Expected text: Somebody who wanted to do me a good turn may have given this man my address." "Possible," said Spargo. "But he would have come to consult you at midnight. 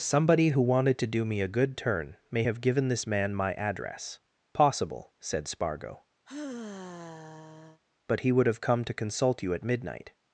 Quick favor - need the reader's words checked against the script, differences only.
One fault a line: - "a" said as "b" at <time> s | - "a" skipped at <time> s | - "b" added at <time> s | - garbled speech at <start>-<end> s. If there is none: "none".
none